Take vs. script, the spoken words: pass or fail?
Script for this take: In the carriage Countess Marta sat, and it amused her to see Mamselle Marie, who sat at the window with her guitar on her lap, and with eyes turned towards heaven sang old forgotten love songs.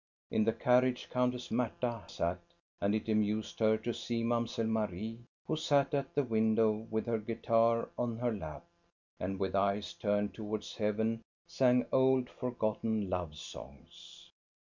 pass